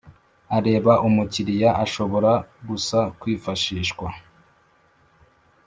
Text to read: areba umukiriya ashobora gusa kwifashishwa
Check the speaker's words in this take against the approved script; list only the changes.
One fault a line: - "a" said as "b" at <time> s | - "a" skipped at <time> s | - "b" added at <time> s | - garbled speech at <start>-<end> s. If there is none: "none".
none